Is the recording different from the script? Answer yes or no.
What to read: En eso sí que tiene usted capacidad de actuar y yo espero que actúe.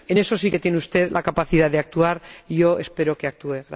yes